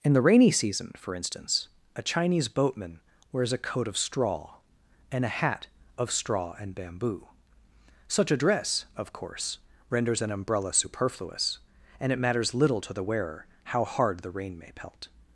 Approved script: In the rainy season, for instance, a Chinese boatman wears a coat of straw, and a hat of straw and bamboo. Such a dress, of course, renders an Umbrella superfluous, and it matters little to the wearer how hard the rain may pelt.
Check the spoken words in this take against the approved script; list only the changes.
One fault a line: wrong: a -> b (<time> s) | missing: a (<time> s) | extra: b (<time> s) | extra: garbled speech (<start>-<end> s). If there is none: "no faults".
no faults